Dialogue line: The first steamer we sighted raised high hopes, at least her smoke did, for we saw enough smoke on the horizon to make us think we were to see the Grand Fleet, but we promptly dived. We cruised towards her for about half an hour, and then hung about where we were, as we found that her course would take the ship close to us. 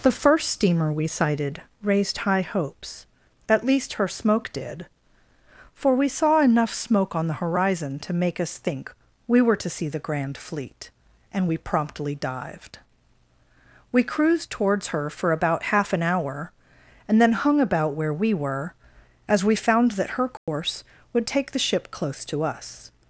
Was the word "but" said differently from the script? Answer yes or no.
yes